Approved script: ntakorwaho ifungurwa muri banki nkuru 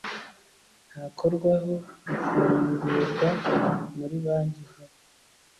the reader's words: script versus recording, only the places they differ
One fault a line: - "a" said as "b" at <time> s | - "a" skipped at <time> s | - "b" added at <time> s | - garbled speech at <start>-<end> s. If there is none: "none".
none